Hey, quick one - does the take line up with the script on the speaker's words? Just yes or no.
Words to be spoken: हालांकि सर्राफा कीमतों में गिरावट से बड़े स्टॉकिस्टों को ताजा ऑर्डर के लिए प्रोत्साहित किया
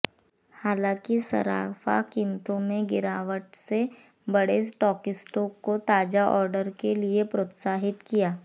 yes